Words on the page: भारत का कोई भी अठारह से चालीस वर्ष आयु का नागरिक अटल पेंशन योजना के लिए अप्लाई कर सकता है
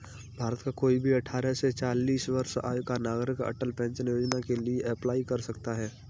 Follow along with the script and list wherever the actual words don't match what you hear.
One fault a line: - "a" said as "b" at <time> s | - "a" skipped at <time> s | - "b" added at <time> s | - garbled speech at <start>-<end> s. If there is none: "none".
none